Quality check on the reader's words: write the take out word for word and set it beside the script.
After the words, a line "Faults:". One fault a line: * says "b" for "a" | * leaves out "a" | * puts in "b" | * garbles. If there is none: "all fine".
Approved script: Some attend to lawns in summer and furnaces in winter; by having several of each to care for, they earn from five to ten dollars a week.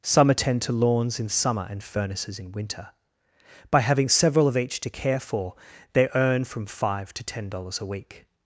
Some attend to lawns in summer and furnaces in winter; by having several of each to care for, they earn from five to ten dollars a week.
Faults:
all fine